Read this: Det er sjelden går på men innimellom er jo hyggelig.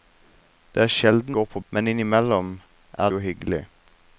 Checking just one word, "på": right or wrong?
right